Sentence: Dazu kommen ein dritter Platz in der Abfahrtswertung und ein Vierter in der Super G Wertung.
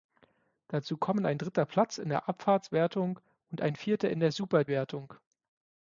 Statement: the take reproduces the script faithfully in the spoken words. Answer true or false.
false